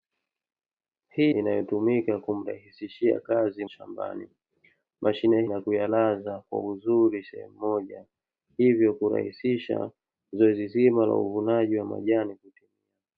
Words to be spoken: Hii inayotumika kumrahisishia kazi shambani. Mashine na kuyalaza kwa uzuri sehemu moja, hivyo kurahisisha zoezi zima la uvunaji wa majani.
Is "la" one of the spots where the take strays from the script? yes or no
no